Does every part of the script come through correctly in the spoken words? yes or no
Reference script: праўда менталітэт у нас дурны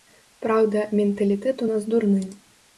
yes